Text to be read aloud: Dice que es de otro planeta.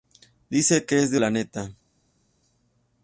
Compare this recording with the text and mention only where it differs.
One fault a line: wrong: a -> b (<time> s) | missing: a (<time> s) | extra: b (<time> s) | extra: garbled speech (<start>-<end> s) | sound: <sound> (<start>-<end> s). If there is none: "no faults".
missing: otro (1.2 s)